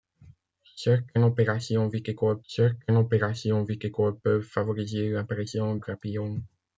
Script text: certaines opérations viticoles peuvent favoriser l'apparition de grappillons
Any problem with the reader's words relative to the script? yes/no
yes